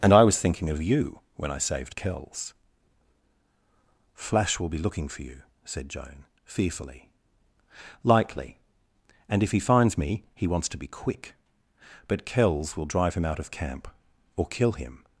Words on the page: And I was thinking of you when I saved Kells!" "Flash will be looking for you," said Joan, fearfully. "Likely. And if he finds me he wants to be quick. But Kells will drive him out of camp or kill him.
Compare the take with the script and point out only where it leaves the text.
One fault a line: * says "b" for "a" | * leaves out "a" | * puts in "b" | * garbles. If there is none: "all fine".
all fine